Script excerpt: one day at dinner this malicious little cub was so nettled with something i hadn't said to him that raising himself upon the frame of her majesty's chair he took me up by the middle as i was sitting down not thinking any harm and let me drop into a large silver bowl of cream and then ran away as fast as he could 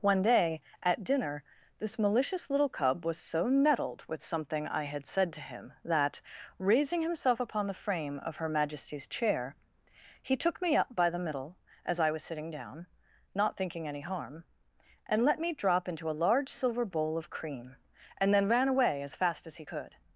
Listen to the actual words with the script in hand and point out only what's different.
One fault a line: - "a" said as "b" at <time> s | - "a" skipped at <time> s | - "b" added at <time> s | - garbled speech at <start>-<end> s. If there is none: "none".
- "hadn't" said as "had" at 4.8 s